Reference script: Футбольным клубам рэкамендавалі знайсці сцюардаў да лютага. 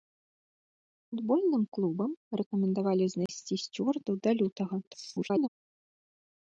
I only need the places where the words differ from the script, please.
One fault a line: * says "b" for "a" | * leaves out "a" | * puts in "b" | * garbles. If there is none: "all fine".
* garbles